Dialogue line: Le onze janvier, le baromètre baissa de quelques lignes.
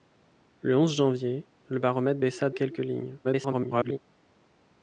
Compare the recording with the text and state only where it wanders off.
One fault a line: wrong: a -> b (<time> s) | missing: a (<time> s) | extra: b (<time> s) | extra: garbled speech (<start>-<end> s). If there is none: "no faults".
missing: de (2.5 s)
extra: garbled speech (3.2-4.0 s)